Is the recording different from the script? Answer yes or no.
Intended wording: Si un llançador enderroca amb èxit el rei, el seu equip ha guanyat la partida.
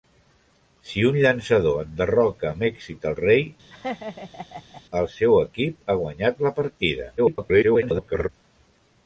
yes